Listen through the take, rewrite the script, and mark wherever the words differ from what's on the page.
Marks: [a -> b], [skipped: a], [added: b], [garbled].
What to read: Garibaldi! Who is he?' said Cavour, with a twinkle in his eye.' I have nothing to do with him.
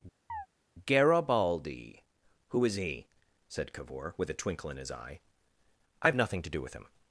Garibaldi! Who is he?' said Cavour, with a twinkle in his eye.' I have nothing to do with him.